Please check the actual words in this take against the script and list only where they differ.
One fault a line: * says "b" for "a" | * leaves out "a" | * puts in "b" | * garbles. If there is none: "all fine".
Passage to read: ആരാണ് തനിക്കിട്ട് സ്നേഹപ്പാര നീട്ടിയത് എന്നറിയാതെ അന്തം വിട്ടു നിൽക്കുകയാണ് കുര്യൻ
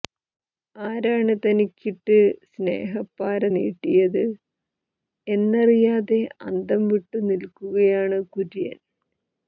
all fine